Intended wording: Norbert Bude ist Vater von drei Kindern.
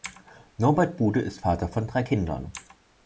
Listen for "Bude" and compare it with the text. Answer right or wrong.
right